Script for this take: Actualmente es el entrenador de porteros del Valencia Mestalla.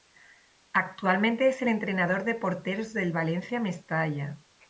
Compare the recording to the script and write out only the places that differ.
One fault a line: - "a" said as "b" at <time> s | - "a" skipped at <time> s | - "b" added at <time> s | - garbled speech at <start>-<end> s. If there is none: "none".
none